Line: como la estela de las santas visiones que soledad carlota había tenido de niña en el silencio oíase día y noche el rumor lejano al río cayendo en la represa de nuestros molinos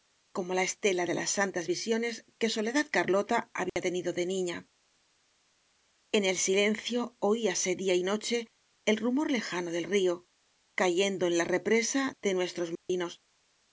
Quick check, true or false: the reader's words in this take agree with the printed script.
false